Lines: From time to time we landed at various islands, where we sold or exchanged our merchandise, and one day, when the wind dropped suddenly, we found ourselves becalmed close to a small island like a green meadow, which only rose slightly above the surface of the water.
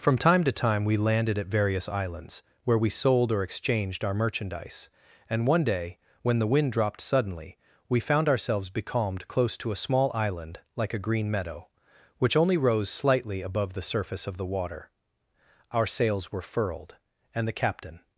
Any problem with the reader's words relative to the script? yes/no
yes